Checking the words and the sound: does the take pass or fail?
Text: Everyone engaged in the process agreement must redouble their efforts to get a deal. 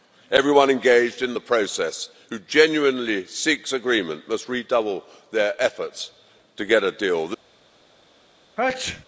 fail